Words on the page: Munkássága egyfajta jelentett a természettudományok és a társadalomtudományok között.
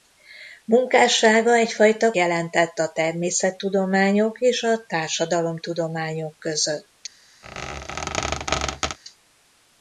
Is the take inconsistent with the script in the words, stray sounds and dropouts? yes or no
yes